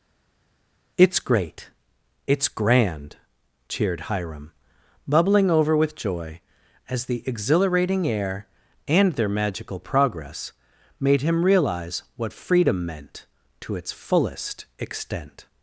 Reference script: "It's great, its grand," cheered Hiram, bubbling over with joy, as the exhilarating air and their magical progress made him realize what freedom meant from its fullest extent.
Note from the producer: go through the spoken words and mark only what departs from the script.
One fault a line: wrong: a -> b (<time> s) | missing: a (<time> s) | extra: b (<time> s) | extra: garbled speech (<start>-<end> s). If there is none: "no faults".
wrong: from -> to (13.6 s)